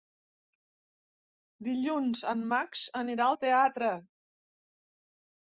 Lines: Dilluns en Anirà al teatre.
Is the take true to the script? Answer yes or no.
no